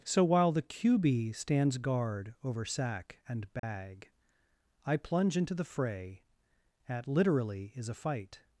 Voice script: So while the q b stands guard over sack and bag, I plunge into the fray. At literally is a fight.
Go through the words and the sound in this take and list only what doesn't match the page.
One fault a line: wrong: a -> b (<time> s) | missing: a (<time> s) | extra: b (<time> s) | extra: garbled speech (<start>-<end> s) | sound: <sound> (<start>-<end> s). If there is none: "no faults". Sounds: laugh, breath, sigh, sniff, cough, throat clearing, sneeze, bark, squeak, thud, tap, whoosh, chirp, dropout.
sound: dropout (3.6-3.6 s)